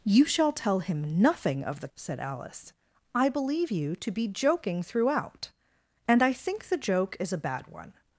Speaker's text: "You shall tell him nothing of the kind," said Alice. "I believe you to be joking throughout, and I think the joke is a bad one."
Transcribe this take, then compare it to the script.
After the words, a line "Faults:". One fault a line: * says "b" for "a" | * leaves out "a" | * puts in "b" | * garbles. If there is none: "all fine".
"You shall tell him nothing of the," said Alice. "I believe you to be joking throughout, and I think the joke is a bad one."
Faults:
* leaves out "kind"